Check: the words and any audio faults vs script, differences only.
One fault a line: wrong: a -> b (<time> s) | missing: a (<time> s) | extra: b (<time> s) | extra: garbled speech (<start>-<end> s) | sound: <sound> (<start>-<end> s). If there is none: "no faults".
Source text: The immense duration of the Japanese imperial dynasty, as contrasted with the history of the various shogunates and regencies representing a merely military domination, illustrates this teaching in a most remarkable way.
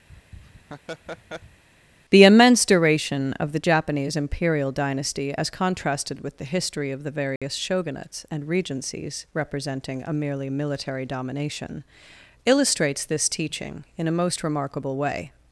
sound: laugh (0.1-1.6 s)
sound: dropout (7.4-7.4 s)